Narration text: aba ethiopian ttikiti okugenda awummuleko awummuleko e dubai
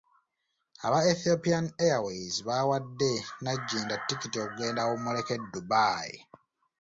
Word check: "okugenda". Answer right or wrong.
right